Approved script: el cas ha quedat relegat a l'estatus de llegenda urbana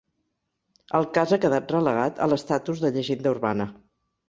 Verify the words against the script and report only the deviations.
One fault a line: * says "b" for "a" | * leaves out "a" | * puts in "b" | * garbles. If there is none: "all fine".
all fine